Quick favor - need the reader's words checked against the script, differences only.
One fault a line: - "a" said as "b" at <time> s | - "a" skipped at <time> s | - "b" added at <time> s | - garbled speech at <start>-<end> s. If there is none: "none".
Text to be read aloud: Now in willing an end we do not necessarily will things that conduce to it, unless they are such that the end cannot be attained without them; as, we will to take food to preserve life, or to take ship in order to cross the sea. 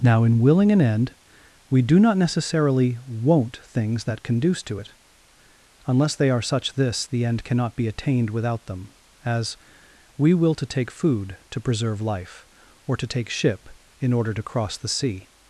- "will" said as "won't" at 3.1 s
- "that" said as "this" at 6.7 s